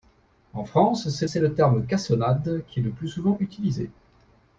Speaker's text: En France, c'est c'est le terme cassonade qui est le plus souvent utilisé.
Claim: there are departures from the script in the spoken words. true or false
false